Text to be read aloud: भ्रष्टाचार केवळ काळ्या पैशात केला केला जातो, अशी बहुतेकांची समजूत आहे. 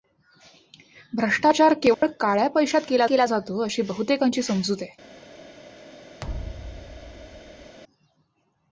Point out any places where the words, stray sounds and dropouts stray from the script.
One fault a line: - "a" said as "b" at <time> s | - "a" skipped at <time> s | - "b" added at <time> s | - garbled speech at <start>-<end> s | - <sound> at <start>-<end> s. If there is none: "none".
- dropout at 1.9-2.0 s
- thud at 6.2-7.8 s